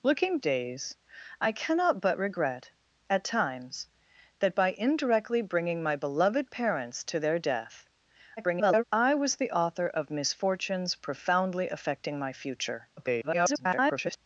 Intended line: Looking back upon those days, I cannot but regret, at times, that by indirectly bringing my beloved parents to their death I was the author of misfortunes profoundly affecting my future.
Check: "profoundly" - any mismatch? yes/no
no